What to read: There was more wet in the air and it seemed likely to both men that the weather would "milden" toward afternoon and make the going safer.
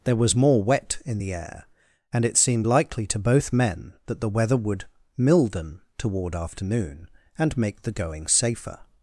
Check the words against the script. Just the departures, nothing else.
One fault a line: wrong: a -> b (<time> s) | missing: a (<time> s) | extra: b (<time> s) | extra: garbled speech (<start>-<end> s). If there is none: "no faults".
no faults